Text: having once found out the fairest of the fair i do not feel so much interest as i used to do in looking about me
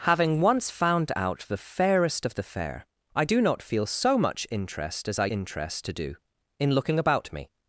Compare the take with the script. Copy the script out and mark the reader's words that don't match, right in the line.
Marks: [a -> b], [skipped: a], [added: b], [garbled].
having once found out the fairest of the fair i do not feel so much interest as i [used -> interest] to do in looking about me